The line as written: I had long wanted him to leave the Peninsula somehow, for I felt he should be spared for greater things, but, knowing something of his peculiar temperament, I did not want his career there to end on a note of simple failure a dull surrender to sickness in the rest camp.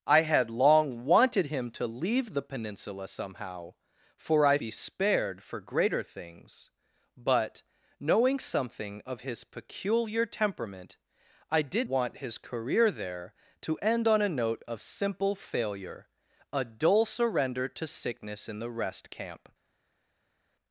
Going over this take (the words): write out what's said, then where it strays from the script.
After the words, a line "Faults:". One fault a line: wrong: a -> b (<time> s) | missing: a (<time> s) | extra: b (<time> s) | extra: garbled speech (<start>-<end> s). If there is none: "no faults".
I had long wanted him to leave the Peninsula somehow, for I be spared for greater things, but, knowing something of his peculiar temperament, I did want his career there to end on a note of simple failure a dull surrender to sickness in the rest camp.
Faults:
missing: felt he should (4.6 s)
missing: not (11.9 s)